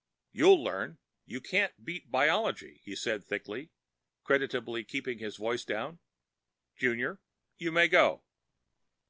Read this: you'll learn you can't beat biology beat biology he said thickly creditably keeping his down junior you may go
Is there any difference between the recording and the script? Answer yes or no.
yes